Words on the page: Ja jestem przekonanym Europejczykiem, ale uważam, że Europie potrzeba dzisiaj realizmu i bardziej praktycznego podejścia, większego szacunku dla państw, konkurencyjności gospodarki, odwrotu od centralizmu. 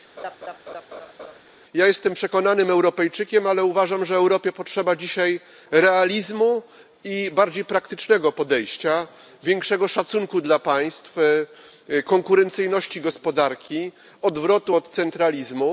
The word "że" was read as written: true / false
true